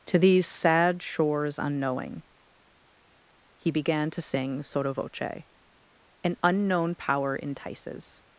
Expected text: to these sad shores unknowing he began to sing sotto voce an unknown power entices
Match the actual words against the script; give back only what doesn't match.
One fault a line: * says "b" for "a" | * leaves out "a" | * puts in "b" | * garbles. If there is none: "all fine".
all fine